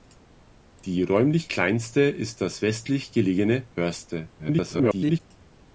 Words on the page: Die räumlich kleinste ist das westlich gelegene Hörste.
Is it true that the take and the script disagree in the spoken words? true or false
true